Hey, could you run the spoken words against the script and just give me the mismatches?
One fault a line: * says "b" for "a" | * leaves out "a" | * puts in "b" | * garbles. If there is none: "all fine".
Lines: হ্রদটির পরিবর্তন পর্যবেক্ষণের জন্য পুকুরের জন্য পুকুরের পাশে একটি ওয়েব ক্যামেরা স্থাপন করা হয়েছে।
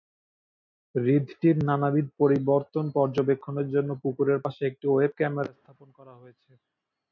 * puts in "নানাবিধ"
* leaves out "জন্য পুকুরের"